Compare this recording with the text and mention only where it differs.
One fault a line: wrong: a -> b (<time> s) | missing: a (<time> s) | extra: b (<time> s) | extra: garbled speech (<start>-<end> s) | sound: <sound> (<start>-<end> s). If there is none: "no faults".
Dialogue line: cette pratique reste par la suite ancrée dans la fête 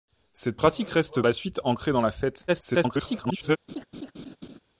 missing: par (1.2 s)
extra: garbled speech (2.5-3.6 s)
sound: laugh (3.7-4.6 s)